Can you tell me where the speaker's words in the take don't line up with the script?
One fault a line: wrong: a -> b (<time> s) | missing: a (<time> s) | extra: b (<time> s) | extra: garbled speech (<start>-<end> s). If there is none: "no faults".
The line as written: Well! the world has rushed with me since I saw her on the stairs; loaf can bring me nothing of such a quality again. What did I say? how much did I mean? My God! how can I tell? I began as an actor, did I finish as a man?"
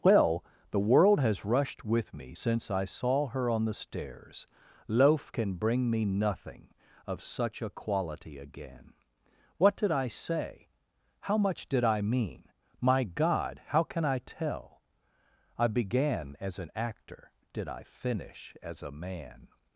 no faults